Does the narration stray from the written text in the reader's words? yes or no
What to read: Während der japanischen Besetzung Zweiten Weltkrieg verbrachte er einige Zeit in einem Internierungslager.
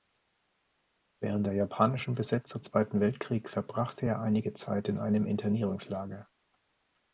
no